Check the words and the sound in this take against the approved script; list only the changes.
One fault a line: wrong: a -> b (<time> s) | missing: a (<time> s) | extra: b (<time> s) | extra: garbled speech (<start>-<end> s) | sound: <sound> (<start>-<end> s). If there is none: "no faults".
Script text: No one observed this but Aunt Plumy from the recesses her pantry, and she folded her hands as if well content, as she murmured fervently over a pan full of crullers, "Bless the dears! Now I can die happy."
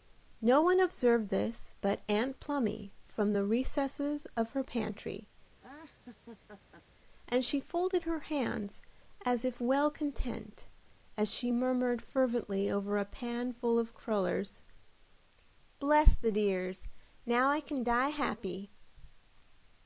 extra: of (4.4 s)
sound: laugh (5.6-6.8 s)